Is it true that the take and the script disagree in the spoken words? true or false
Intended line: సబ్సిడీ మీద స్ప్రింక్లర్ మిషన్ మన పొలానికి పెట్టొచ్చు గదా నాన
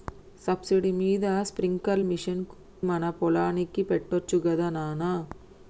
false